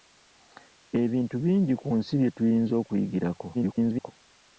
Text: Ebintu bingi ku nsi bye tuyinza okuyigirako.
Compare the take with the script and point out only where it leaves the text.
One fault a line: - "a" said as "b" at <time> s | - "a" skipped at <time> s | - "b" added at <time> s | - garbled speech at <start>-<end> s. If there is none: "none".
- garbled speech at 3.5-4.1 s